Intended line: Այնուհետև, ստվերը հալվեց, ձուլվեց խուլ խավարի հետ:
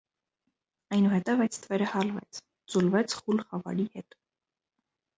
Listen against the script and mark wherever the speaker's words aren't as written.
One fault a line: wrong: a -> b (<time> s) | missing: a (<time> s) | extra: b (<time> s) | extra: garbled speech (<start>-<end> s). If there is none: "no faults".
extra: այդ (1.4 s)